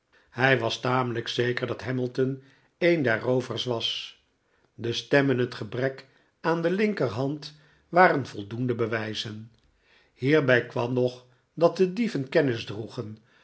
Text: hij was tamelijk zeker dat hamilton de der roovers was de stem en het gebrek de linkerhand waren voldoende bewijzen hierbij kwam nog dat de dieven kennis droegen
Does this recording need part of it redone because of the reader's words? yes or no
yes